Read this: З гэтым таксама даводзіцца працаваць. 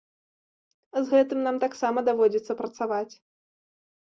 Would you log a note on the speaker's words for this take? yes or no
yes